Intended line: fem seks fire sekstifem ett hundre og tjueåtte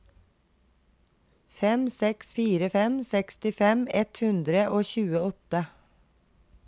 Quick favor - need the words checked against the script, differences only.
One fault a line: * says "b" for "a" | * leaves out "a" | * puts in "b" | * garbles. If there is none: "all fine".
* puts in "fem"